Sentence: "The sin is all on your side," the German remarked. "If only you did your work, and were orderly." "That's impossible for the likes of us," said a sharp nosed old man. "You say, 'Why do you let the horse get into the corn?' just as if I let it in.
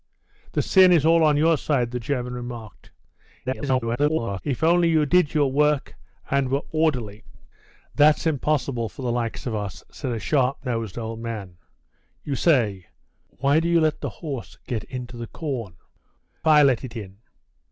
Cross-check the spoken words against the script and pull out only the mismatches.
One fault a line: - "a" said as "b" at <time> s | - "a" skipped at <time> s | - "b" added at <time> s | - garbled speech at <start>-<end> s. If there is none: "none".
- garbled speech at 3.4-4.4 s
- "just as if" skipped at 15.8 s